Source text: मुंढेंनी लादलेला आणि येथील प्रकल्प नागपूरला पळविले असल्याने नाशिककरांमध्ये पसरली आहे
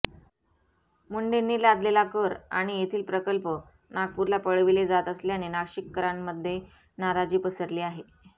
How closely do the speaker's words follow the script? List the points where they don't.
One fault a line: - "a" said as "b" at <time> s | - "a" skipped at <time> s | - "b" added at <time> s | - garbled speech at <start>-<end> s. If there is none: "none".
- "कर" added at 2.1 s
- "जात" added at 4.9 s
- "नाराजी" added at 7.0 s